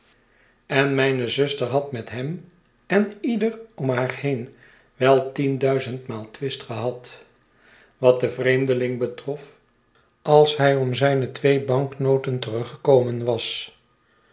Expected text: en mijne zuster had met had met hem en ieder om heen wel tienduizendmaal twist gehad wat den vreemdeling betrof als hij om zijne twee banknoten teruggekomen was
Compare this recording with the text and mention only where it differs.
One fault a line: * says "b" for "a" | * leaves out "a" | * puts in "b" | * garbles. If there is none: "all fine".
* leaves out "had met"
* puts in "haar"